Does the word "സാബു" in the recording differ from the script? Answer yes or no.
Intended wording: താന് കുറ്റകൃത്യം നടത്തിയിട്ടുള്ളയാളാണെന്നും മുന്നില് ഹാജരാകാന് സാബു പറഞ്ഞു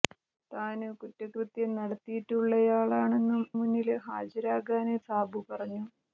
no